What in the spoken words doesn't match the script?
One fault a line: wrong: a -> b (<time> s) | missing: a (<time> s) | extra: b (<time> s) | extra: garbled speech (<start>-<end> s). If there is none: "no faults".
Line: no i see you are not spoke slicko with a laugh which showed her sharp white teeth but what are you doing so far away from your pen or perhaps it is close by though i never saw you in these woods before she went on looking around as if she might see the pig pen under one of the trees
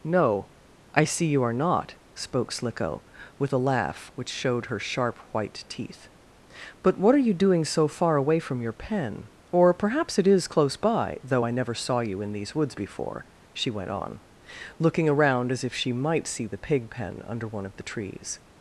no faults